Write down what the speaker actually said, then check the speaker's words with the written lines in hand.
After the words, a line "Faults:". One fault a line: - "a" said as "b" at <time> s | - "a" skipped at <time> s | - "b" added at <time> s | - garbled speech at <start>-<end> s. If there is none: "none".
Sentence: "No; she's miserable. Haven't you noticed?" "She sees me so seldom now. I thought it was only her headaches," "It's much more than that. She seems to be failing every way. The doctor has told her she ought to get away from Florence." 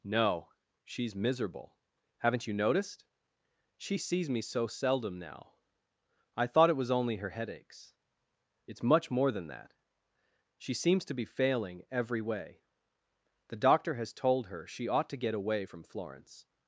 "No; she's miserable. Haven't you noticed?" "She sees me so seldom now. I thought it was only her headaches," "It's much more than that. She seems to be failing every way. The doctor has told her she ought to get away from Florence."
Faults:
none